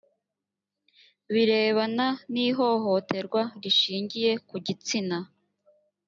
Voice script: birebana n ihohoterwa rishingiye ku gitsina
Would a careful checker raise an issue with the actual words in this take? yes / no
no